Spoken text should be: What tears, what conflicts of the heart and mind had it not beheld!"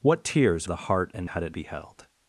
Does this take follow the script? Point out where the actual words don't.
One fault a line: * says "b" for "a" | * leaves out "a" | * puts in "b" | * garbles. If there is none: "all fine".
* leaves out "what conflicts of"
* leaves out "mind"
* leaves out "not"